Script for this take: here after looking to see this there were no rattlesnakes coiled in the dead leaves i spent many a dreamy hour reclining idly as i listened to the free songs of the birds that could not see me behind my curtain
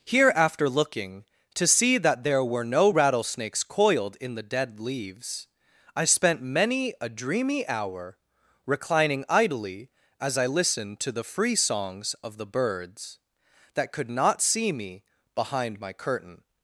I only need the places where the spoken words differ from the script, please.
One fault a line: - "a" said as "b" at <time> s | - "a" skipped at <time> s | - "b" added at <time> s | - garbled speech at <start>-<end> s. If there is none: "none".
- "this" said as "that" at 2.0 s